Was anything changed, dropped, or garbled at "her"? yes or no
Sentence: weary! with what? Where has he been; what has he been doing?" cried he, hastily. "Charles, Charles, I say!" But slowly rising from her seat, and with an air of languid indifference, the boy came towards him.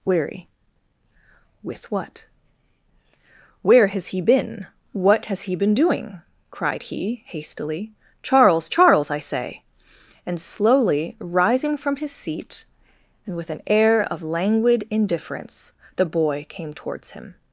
yes